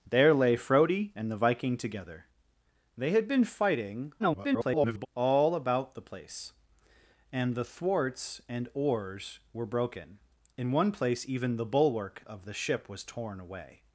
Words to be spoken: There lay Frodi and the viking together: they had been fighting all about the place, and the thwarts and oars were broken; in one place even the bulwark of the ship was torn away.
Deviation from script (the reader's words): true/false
true